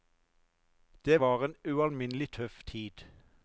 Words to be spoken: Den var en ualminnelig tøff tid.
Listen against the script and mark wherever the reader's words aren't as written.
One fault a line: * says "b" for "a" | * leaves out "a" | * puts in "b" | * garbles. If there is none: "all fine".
* says "Det" for "Den"